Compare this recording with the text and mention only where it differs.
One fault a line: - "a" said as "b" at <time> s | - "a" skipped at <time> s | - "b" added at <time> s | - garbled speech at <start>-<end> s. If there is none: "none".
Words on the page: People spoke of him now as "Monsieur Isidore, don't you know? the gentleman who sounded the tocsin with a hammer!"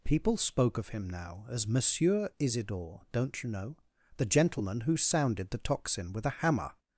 none